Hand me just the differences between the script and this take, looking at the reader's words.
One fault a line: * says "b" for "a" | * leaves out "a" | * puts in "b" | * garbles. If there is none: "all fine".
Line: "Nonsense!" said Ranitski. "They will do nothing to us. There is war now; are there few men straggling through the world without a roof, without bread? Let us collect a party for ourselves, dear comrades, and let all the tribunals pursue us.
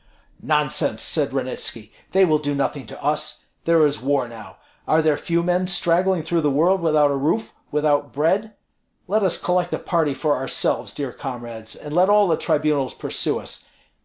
all fine